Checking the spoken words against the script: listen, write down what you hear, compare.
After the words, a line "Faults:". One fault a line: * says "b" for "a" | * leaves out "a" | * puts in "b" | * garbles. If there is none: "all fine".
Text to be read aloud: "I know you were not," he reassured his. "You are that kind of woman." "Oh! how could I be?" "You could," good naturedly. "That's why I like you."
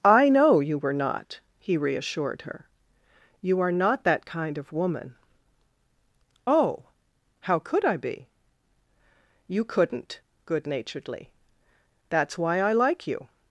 "I know you were not," he reassured her. "You are not that kind of woman." "Oh! how could I be?" "You couldn't," good naturedly. "That's why I like you."
Faults:
* says "her" for "his"
* puts in "not"
* says "couldn't" for "could"